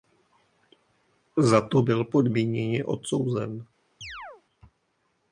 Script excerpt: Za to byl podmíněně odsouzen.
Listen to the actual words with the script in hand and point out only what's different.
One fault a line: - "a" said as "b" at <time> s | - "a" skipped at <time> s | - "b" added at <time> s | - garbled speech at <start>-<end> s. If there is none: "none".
none